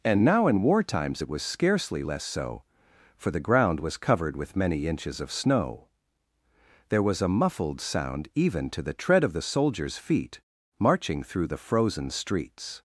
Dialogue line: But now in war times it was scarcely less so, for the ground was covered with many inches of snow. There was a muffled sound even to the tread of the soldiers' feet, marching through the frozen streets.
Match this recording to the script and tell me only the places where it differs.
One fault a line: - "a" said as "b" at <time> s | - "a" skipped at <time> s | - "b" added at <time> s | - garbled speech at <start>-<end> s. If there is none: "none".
- "But" said as "And" at 0.0 s